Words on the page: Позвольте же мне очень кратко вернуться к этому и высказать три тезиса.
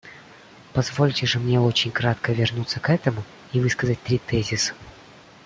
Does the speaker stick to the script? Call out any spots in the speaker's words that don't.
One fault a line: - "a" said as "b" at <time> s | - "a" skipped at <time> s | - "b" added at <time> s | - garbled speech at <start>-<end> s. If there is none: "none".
none